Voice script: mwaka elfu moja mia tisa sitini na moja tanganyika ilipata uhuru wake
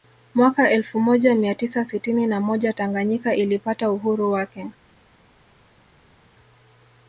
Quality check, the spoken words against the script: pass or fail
pass